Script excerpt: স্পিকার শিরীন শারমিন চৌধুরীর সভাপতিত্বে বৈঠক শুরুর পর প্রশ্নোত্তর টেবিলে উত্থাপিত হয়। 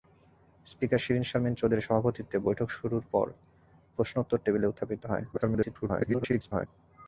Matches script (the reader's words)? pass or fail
fail